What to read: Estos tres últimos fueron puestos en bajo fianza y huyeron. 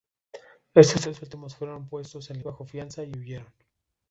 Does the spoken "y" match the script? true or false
true